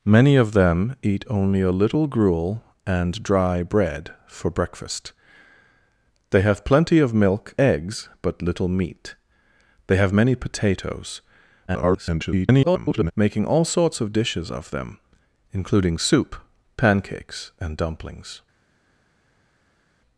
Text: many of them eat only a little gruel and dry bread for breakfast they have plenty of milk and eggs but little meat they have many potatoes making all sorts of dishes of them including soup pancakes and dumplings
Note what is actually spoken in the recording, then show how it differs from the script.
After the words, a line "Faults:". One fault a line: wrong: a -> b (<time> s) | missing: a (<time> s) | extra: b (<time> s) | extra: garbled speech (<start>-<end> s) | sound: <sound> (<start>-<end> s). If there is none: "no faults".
many of them eat only a little gruel and dry bread for breakfast they have plenty of milk eggs but little meat they have many potatoes [garbled] making all sorts of dishes of them including soup pancakes and dumplings
Faults:
missing: and (7.5 s)
extra: garbled speech (11.7-13.1 s)